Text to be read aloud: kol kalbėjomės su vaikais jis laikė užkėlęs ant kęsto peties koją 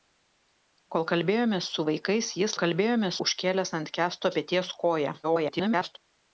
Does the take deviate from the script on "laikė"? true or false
true